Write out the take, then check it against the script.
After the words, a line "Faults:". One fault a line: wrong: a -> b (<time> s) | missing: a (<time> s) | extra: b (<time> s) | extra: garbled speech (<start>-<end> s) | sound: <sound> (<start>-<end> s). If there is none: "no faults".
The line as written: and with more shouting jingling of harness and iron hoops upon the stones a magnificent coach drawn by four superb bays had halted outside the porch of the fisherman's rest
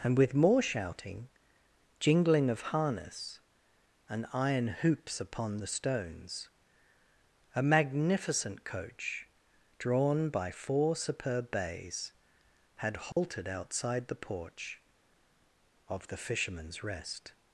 and with more shouting jingling of harness and iron hoops upon the stones a magnificent coach drawn by four superb bays had halted outside the porch of the fisherman's rest
Faults:
sound: dropout (13.1-13.2 s)